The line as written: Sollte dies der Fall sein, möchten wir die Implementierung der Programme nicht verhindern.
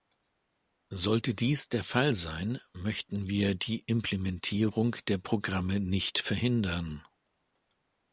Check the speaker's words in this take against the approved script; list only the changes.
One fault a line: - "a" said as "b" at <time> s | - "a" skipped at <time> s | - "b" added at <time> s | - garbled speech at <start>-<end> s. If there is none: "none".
none